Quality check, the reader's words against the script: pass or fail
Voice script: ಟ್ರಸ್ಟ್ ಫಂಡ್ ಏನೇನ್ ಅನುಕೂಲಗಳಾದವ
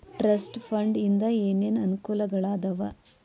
fail